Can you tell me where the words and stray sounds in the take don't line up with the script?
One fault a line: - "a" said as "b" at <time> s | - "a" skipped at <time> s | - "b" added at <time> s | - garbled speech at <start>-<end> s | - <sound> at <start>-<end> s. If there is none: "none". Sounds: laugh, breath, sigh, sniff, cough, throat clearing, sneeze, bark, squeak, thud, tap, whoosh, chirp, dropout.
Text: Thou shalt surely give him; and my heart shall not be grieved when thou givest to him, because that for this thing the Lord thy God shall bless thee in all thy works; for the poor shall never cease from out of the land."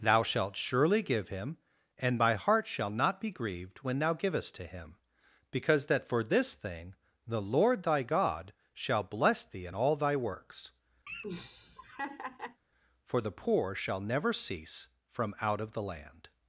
- laugh at 11.1-12.6 s